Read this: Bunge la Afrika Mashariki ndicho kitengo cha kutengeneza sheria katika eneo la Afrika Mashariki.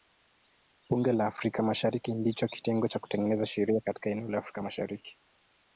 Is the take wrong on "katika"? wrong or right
right